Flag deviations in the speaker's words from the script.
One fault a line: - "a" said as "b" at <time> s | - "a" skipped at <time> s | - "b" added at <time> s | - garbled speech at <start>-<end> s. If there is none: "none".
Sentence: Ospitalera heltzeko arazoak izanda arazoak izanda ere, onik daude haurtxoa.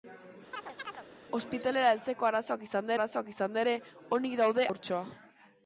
none